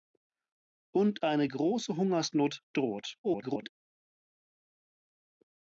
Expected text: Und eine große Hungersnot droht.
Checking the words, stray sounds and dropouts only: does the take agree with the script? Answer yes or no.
no